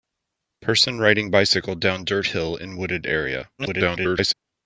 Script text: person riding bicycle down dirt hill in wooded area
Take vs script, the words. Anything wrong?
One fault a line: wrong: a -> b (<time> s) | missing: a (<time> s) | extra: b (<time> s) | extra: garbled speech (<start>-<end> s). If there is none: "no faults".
extra: garbled speech (3.6-4.3 s)